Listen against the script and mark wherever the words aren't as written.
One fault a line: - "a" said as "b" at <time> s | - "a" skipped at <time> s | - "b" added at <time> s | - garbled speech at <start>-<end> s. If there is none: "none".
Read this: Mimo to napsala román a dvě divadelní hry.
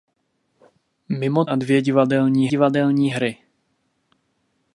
- "to napsala román" skipped at 1.4 s
- "divadelní" added at 2.5 s